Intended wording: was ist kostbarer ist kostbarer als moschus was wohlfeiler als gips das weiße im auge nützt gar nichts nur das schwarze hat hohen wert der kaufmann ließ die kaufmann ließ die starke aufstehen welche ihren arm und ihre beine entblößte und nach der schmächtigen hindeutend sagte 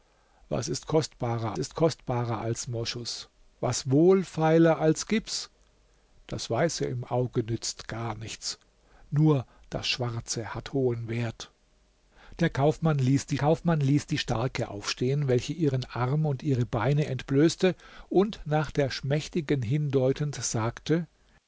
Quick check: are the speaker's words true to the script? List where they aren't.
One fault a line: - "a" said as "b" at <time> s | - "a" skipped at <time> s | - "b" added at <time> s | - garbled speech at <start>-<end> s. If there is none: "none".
none